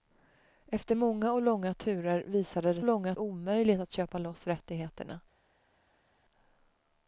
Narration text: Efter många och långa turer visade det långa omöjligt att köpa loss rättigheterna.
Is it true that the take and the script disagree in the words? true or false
false